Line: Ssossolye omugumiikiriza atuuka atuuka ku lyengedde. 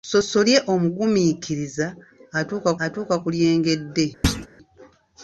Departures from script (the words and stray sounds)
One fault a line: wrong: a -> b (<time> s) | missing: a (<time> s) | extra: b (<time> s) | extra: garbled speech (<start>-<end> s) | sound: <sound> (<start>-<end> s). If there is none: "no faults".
sound: thud (4.2-4.5 s)